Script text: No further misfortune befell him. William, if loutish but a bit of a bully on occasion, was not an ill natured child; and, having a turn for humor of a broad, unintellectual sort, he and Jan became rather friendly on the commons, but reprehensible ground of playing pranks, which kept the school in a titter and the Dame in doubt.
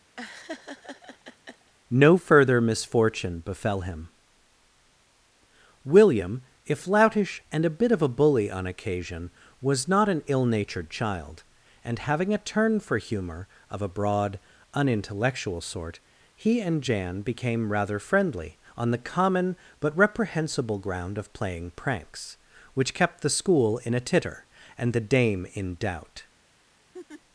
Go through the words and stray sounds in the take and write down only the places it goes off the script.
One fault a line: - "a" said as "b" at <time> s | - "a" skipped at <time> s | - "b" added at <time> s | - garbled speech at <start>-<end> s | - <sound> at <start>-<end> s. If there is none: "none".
- laugh at 0.2-1.7 s
- "but" said as "and" at 7.5 s
- "commons" said as "common" at 19.0 s
- laugh at 26.9-27.2 s